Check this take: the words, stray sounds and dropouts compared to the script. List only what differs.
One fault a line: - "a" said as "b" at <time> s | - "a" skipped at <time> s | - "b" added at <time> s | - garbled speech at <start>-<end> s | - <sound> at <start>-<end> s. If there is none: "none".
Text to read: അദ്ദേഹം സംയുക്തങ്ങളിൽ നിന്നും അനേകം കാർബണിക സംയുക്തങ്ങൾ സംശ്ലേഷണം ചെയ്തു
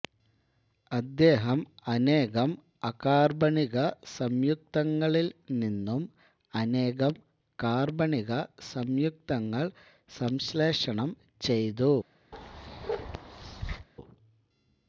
- "അനേകം അകാർബണിക" added at 1.9 s
- bark at 12.3-13.9 s